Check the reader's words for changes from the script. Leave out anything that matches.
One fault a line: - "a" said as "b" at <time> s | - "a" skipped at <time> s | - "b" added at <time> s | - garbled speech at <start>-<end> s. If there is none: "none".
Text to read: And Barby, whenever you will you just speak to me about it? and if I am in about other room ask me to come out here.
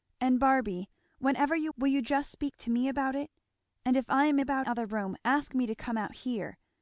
none